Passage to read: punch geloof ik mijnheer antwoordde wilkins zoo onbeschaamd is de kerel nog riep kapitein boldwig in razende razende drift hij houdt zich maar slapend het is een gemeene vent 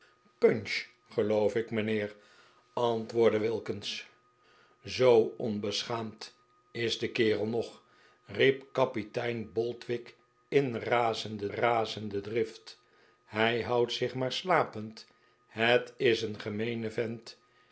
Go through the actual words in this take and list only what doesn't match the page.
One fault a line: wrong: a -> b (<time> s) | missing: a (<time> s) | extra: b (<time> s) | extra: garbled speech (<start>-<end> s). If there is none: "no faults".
no faults